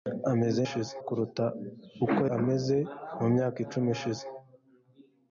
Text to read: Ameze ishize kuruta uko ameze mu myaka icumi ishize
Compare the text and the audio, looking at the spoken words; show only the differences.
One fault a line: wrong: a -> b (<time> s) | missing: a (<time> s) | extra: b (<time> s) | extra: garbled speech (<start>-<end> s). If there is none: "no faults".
no faults